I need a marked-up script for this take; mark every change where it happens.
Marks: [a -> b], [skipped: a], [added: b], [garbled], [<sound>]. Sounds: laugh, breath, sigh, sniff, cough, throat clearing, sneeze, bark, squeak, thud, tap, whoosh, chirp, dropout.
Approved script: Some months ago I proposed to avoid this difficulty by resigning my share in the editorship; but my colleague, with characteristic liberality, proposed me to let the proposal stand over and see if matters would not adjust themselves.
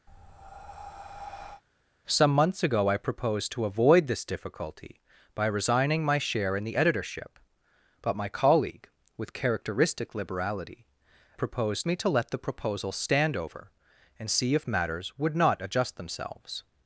[breath] Some months ago I proposed to avoid this difficulty by resigning my share in the editorship; but my colleague, with characteristic liberality, proposed me to let the proposal stand over and see if matters would not adjust themselves.